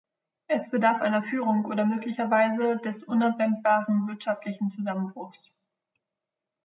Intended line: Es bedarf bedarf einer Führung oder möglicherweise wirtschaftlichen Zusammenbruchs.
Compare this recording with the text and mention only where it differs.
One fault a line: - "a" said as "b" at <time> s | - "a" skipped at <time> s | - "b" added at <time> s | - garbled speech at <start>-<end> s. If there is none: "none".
- "bedarf" skipped at 1.0 s
- "des unabwendbaren" added at 2.8 s